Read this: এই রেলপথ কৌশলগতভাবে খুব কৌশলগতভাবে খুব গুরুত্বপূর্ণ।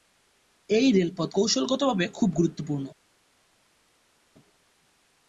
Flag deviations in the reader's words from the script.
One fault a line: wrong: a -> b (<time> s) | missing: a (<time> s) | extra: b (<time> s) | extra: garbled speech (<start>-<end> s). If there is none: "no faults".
missing: কৌশলগতভাবে খুব (2.3 s)